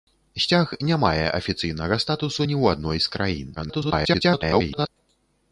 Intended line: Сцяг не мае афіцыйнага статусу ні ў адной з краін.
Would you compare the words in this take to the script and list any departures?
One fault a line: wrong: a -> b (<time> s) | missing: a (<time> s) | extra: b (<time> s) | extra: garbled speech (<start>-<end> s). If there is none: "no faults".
extra: garbled speech (3.6-4.9 s)